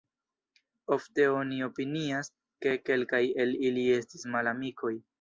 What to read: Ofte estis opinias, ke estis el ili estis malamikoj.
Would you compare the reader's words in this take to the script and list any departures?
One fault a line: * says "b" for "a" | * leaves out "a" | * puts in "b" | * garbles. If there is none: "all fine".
* says "oni" for "estis"
* says "kelkaj" for "estis"